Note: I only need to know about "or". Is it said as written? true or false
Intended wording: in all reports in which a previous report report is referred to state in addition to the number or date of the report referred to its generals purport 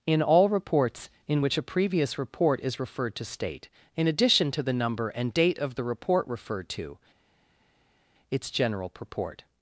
false